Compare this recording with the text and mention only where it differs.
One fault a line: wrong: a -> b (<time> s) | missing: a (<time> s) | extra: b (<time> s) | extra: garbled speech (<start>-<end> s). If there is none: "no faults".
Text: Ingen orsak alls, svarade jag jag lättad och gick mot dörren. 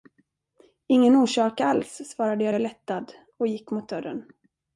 no faults